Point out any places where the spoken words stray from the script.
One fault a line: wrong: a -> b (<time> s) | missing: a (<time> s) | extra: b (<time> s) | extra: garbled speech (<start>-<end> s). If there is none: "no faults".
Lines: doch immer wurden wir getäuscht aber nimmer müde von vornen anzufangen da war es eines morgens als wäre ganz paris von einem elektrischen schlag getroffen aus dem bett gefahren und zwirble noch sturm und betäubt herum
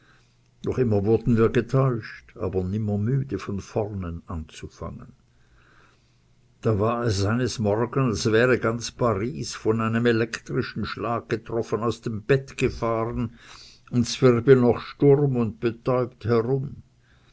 no faults